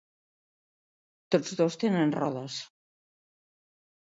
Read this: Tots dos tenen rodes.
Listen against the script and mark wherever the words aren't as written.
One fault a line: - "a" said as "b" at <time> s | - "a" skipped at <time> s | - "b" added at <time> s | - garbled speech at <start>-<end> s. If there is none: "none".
none